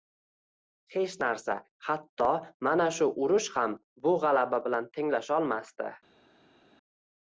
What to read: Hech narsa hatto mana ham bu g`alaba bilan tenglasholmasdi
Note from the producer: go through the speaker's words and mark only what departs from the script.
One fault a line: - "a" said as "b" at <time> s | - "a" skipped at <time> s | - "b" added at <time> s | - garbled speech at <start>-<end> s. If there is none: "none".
- "shu urush" added at 3.0 s